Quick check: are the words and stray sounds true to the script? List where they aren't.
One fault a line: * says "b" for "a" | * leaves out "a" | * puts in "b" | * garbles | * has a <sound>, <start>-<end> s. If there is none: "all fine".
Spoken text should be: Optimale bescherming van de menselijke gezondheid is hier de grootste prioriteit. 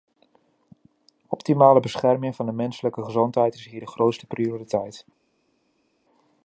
all fine